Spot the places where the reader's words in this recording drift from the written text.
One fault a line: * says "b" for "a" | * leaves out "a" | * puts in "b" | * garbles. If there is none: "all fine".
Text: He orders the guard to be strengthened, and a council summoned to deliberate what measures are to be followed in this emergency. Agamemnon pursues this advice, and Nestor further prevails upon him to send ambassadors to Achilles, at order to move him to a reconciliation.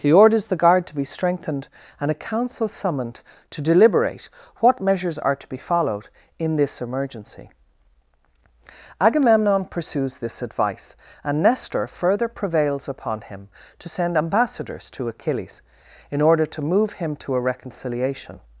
* says "in" for "at"